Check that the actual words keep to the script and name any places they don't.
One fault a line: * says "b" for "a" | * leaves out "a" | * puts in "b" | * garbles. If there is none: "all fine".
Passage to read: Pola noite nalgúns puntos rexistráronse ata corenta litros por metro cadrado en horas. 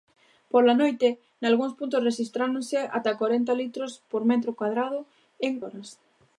all fine